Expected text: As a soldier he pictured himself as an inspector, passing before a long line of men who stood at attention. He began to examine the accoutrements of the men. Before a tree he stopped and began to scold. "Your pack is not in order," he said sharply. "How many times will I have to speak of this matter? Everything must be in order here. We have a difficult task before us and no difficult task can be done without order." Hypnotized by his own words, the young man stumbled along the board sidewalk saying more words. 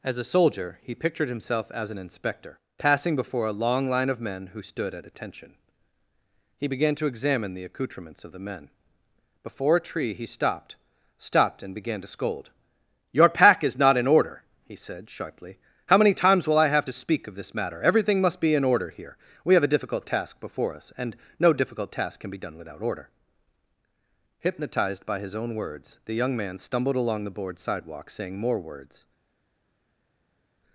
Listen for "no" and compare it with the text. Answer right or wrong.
right